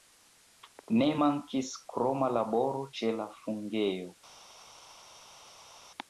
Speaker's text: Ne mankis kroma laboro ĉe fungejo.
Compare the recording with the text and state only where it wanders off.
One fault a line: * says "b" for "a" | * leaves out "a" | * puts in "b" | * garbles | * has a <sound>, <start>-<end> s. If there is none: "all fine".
* puts in "la"